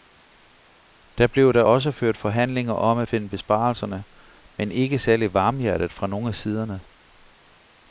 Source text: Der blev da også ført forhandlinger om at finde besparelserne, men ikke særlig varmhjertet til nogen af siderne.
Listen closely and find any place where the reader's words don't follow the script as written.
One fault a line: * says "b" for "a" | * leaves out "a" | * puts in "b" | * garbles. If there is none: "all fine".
* says "fra" for "til"